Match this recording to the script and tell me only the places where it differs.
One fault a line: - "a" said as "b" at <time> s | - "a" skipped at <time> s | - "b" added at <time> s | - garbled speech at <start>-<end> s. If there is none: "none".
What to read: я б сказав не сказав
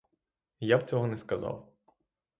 - "сказав" said as "цього" at 0.9 s